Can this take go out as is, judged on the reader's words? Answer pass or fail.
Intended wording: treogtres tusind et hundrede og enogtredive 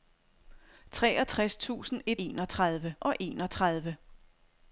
fail